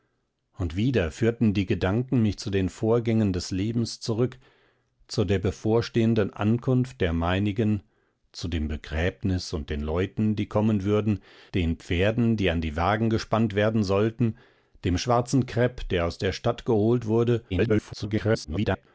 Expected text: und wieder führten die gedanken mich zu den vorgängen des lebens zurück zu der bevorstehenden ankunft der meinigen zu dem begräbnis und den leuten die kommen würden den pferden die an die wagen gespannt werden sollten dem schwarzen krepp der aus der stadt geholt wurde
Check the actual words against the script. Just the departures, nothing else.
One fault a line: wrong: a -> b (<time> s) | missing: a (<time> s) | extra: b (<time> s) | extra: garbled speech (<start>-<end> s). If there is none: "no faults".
extra: garbled speech (17.5-18.9 s)